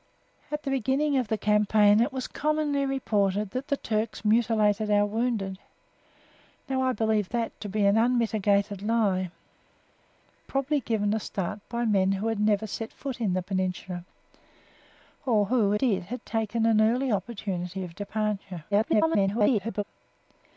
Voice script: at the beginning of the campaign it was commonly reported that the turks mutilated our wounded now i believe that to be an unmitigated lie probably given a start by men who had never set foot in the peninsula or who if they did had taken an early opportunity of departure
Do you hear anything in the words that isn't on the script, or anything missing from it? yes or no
yes